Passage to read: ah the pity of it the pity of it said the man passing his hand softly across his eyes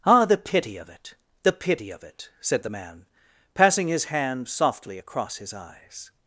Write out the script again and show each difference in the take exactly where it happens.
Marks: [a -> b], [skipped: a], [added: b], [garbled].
ah the pity of it the pity of it said the man passing his hand softly across his eyes